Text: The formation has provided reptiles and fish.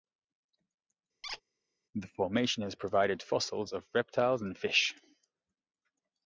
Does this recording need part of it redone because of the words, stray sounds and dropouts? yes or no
yes